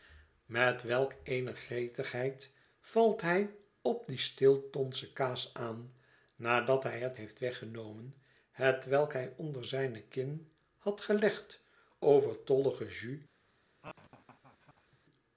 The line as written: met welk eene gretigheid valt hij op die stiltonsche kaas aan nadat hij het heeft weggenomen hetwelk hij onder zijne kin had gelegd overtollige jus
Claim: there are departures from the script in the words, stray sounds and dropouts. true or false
true